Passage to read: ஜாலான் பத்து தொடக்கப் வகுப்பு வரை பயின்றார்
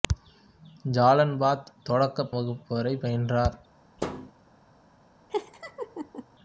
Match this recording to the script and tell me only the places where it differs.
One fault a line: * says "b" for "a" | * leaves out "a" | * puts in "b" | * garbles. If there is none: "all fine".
all fine